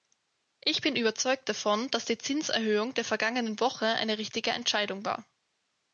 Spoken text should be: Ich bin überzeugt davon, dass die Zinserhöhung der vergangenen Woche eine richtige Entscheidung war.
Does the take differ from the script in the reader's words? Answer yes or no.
no